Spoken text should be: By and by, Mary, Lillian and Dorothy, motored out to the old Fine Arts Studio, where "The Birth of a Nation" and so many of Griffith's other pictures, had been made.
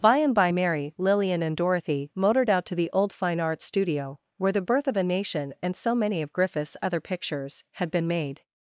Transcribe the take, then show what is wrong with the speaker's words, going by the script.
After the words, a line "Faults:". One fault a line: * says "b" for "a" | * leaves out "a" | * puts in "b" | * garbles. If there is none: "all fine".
By and by, Mary, Lillian and Dorothy, motored out to the old Fine Arts Studio, where "The Birth of a Nation" and so many of Griffith's other pictures, had been made.
Faults:
all fine